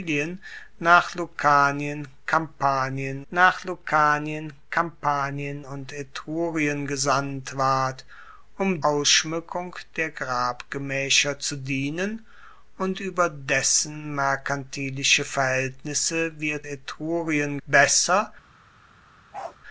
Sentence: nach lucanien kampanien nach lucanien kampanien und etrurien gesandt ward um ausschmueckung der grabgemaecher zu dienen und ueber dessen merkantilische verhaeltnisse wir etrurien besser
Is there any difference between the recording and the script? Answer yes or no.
no